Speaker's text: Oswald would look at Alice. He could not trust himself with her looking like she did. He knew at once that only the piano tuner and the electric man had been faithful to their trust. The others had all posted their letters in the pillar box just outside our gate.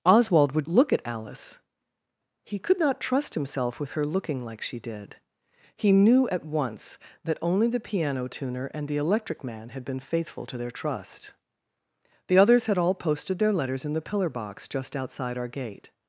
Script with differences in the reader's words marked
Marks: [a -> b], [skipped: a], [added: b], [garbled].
Oswald would look at Alice. He could not trust himself with her looking like she did. He knew at once that only the piano tuner and the electric man had been faithful to their trust. The others had all posted their letters in the pillar box just outside our gate.